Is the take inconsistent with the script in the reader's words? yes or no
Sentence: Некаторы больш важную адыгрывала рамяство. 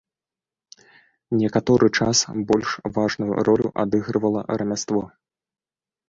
yes